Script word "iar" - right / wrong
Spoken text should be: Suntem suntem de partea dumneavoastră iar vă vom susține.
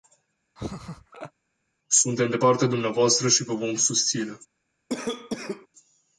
wrong